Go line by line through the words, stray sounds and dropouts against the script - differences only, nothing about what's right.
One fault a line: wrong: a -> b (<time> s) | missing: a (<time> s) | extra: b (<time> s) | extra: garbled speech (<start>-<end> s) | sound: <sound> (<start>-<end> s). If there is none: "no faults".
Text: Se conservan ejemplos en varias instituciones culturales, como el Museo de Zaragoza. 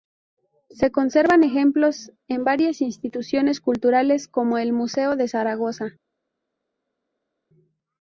no faults